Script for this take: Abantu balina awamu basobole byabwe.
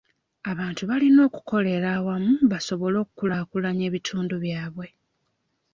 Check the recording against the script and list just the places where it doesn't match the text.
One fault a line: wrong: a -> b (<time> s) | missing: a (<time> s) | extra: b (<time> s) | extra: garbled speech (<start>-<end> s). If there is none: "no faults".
extra: okukolera (1.3 s)
extra: okukulaakulanya ebitundu (3.0 s)